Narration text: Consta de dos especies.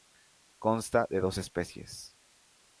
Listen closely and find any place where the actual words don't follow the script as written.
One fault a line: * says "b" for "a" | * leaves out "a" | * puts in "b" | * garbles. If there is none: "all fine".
all fine